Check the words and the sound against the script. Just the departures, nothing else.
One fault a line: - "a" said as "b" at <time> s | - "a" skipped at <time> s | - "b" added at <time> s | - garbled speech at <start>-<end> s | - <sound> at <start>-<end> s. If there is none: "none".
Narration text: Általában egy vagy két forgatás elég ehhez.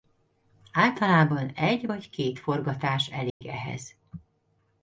- dropout at 3.3-3.4 s